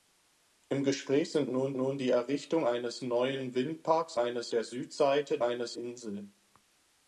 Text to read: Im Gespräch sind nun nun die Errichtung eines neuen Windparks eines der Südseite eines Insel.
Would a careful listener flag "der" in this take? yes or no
no